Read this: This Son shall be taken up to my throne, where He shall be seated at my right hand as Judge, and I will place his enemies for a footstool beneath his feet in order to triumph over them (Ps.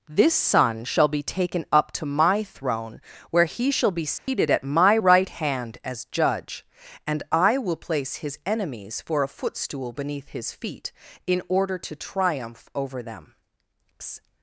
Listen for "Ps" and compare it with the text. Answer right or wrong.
wrong